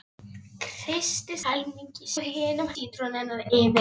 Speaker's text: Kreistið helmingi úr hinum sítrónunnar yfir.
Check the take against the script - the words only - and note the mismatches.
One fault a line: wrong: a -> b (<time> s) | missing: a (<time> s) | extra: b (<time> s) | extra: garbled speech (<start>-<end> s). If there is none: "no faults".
no faults